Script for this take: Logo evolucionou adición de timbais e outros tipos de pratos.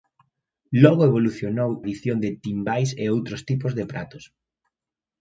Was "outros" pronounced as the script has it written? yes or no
yes